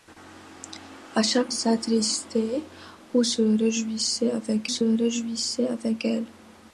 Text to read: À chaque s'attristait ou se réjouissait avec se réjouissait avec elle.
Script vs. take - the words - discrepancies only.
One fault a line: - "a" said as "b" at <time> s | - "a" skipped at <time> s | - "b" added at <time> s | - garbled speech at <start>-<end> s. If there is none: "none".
none